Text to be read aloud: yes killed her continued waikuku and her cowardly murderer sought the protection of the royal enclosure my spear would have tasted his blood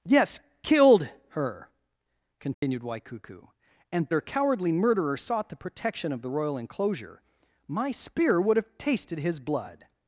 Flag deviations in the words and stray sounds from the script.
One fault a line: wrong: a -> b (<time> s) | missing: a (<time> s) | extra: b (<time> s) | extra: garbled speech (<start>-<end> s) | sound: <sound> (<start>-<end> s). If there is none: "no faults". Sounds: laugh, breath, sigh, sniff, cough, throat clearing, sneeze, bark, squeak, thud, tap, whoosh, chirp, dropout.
sound: dropout (2.5-2.6 s)